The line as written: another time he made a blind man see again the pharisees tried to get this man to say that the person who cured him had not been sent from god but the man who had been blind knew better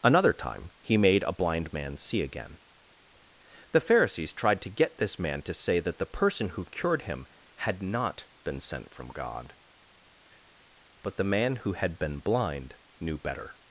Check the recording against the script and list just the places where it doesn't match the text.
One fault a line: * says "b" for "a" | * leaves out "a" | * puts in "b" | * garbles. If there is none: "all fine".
all fine